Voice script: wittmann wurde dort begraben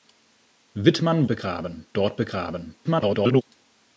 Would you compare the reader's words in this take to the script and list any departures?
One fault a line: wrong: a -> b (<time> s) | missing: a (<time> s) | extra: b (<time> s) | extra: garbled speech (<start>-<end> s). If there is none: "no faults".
wrong: wurde -> begraben (1.3 s)
extra: garbled speech (2.8-3.4 s)